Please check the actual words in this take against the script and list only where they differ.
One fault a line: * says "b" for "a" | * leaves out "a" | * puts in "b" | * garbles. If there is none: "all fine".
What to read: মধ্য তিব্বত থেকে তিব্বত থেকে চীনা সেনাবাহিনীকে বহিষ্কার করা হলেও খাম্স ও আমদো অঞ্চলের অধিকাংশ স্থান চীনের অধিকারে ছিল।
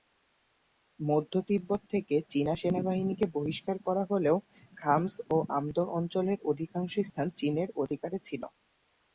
* leaves out "তিব্বত থেকে"